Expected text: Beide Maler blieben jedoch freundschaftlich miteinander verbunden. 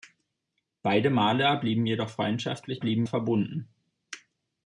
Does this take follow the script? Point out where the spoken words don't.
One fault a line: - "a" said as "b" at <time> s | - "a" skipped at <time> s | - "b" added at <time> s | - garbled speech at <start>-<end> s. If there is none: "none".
- "miteinander" said as "blieben" at 2.8 s